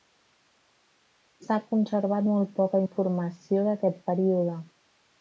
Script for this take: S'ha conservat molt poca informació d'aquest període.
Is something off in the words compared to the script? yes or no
no